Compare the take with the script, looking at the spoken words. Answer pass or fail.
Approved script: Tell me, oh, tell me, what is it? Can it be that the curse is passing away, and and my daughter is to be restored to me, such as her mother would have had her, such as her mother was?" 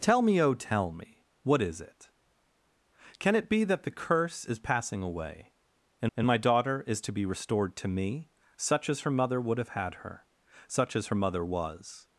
pass